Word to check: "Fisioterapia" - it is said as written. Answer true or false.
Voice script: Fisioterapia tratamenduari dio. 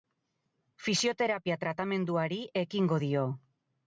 true